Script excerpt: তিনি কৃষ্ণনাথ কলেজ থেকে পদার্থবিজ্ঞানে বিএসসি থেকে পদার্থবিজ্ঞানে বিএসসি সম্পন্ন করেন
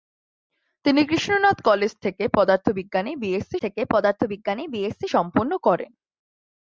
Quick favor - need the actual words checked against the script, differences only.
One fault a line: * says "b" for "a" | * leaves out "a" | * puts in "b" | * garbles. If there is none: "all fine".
all fine